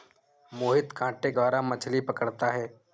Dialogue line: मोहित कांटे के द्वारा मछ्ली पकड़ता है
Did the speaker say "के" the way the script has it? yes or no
no